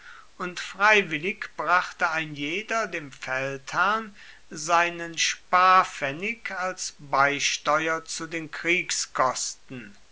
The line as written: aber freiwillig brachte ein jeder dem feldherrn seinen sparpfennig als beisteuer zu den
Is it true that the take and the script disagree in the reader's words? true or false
true